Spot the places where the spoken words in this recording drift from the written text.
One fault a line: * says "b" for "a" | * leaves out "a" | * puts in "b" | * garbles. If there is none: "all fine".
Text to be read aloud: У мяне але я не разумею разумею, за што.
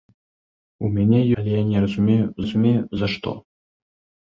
all fine